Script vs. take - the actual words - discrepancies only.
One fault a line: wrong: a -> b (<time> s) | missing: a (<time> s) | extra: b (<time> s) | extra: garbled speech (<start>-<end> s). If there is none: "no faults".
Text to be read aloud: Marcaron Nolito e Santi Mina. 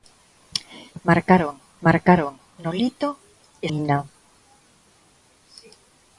extra: marcaron (1.8 s)
missing: Santi (3.7 s)